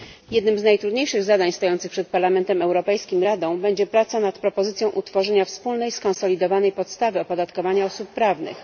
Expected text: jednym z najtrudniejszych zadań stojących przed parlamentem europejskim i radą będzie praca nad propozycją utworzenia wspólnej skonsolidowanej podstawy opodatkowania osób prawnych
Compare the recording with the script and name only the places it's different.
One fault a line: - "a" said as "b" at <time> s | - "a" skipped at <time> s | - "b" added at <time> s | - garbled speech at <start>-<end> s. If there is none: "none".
none